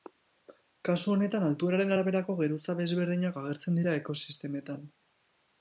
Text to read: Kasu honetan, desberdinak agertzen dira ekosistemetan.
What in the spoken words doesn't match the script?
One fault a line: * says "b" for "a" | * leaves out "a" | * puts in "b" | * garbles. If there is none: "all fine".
* puts in "altueraren araberako geruza"